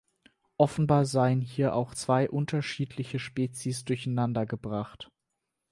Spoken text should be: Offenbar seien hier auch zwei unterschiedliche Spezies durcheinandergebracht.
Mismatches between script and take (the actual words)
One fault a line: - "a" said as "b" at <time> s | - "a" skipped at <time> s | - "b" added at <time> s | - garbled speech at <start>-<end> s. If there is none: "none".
none